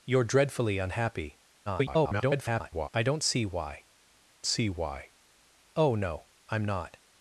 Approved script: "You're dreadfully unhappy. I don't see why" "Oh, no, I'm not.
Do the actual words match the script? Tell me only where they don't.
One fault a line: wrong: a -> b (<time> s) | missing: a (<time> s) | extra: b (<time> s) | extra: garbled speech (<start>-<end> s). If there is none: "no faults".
extra: garbled speech (1.7-2.9 s)
extra: see why (4.5 s)